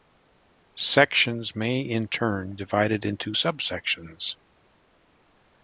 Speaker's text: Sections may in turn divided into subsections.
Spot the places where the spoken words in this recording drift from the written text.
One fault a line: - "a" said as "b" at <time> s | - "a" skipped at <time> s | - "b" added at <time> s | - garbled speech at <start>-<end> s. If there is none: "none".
none